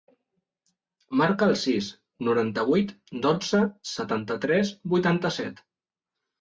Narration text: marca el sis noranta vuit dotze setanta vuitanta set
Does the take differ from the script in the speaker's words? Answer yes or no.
yes